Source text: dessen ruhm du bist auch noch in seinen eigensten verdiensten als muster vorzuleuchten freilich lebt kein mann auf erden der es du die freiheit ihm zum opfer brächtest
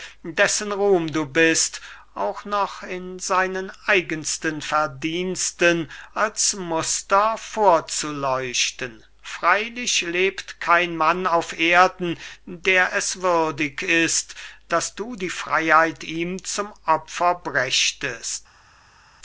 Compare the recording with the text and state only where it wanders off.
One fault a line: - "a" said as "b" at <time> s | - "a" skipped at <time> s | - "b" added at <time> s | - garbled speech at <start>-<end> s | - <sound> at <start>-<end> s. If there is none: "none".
- "würdig ist daß" added at 13.2 s